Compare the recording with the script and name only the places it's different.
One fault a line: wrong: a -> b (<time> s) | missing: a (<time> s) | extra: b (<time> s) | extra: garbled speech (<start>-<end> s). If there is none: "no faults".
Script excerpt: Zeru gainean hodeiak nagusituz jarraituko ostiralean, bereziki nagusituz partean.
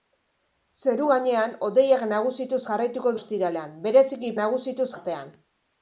no faults